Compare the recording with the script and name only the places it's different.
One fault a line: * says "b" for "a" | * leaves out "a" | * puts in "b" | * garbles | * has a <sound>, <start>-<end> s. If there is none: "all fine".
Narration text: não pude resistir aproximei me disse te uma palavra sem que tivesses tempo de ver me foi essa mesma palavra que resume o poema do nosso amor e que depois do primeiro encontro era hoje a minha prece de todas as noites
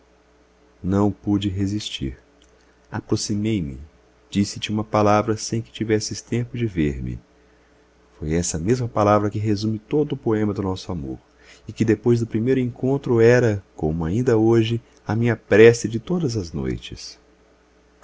* puts in "todo"
* puts in "como ainda"